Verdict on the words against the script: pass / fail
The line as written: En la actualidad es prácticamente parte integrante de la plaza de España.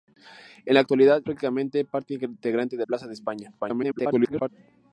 fail